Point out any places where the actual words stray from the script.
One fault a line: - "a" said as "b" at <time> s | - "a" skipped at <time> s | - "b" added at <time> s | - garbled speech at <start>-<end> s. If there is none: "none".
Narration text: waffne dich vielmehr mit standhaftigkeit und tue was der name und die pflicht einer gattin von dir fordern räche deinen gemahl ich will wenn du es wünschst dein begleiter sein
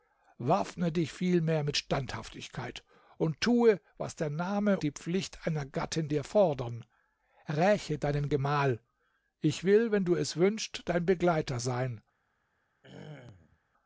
- "und" skipped at 4.8 s
- "von" skipped at 6.1 s